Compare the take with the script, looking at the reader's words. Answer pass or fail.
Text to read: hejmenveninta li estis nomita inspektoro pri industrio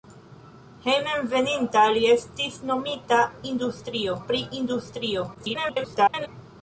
fail